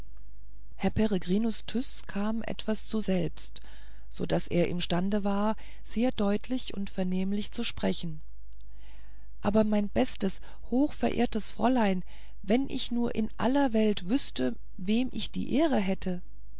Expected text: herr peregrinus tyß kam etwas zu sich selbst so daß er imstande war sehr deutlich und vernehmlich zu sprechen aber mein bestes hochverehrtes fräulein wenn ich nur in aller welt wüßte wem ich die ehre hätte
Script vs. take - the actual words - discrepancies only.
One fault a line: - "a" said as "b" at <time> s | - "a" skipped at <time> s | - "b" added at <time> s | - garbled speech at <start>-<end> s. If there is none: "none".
- "sich" skipped at 3.0 s